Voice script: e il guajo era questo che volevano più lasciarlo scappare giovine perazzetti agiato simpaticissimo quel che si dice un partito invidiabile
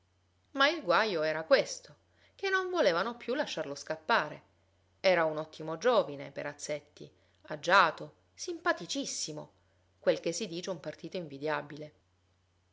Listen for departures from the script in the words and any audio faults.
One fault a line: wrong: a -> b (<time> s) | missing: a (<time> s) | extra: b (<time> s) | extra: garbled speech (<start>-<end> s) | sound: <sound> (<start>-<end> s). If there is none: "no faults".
wrong: e -> ma (0.5 s)
extra: non (2.5 s)
extra: era un ottimo (5.0 s)